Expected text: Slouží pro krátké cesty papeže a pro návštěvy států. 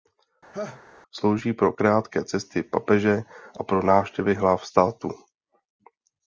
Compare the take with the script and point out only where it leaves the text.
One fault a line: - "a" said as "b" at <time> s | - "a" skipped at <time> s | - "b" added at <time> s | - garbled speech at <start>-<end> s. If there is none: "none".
- "hlav" added at 4.3 s